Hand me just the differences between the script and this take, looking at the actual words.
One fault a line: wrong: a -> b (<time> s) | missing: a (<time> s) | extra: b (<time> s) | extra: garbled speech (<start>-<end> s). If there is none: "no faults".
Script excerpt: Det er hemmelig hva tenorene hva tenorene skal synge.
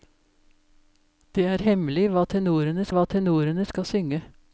no faults